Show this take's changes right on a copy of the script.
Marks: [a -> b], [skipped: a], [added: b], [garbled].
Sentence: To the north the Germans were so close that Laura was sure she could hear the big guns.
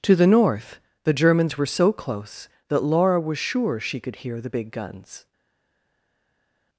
To the north the Germans were so close that Laura was sure she could hear the big guns.